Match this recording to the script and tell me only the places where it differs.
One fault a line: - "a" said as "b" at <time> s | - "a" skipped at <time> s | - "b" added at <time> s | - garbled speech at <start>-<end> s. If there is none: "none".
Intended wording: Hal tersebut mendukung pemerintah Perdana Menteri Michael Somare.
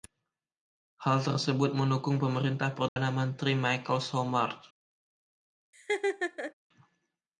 none